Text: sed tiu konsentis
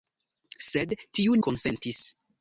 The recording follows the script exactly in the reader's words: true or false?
true